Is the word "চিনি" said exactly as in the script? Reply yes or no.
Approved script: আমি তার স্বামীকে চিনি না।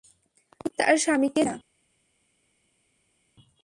no